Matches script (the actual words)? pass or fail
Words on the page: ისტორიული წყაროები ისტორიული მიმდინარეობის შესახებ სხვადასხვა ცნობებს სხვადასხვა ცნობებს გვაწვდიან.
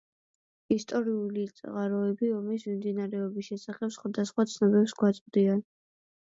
fail